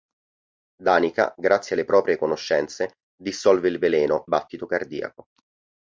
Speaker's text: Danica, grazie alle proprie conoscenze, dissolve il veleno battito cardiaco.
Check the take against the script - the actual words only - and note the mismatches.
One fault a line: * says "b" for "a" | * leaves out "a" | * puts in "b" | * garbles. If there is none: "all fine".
all fine